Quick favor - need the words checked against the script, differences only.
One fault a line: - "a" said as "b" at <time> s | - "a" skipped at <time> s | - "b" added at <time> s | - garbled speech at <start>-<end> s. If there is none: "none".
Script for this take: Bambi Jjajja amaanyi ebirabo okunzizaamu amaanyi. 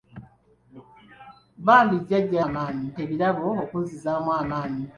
none